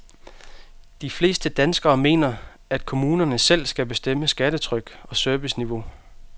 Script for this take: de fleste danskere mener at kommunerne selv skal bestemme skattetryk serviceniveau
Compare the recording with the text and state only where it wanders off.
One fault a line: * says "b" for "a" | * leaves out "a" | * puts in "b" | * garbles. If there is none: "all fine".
* puts in "og"